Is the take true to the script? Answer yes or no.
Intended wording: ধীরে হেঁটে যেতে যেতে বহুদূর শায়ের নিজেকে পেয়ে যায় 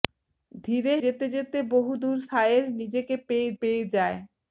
no